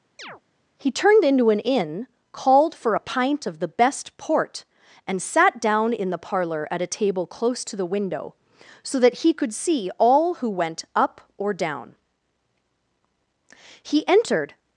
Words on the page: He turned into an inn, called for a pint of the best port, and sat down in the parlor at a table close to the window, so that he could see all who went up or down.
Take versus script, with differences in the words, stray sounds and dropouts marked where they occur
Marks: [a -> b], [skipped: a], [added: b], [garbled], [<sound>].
[chirp] He turned into an inn, called for a pint of the best port, and sat down in the parlor at a table close to the window, so that he could see all who went up or down. [added: He entered]